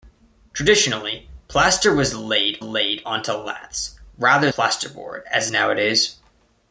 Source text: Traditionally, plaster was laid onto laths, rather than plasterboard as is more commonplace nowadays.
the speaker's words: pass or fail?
fail